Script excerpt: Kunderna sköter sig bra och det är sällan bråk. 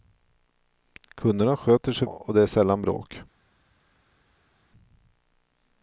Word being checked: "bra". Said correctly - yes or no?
no